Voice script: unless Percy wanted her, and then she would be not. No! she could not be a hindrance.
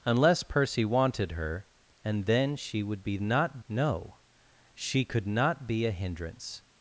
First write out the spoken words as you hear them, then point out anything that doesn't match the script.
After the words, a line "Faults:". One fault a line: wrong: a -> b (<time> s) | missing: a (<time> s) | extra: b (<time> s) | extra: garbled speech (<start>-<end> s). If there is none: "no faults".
unless Percy wanted her, and then she would be not. No! she could not be a hindrance.
Faults:
no faults